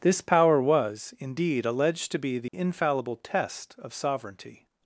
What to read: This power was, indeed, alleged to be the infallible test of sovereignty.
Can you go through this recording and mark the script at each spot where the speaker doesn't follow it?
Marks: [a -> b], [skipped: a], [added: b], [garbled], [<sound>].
This power was, indeed, alleged to be the [dropout] infallible test of sovereignty.